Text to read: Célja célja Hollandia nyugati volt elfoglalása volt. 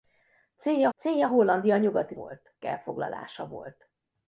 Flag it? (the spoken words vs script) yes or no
no